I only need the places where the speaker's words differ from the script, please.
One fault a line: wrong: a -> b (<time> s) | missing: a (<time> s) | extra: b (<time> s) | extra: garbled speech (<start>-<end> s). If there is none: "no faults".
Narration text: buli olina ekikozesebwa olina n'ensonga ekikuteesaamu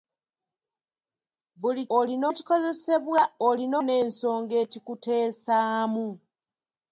no faults